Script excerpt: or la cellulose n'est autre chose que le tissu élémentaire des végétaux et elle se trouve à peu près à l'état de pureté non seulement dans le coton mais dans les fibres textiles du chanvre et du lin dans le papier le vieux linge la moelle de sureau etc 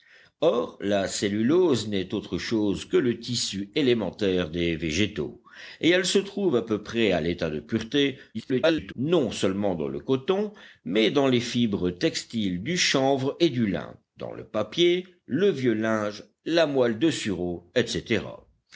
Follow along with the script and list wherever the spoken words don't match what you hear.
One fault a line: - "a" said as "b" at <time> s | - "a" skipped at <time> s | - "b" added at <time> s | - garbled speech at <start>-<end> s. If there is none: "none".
- garbled speech at 8.3-8.9 s